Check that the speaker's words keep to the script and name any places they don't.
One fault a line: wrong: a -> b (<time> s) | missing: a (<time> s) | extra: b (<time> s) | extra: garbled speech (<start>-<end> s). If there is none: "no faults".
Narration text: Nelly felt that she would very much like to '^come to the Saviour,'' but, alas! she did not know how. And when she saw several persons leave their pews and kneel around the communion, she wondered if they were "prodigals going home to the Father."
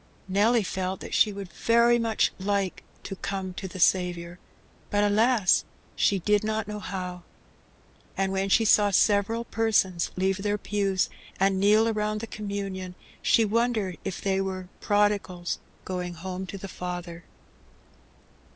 no faults